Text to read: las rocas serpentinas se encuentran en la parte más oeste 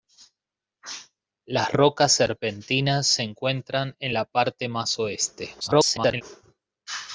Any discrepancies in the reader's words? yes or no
yes